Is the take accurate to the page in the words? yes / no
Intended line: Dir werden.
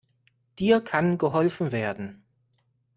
no